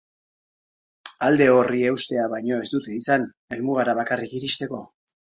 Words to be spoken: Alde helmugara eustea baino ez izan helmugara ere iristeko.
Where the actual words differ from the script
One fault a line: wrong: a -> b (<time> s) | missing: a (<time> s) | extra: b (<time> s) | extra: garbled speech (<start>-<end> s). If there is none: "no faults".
wrong: helmugara -> horri (1.6 s)
extra: dute (2.8 s)
wrong: ere -> bakarrik (4.0 s)